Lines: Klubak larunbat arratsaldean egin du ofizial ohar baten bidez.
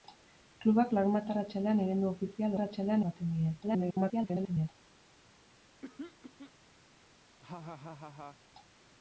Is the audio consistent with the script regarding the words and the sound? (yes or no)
no